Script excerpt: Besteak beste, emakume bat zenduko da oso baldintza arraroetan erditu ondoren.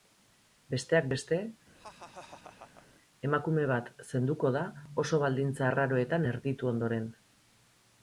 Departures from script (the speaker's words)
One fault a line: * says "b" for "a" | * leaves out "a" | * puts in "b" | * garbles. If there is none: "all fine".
all fine